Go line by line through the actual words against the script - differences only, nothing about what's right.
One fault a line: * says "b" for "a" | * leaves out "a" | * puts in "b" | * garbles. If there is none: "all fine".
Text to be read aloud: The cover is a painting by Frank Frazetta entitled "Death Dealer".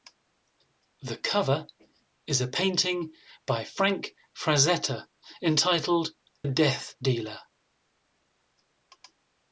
all fine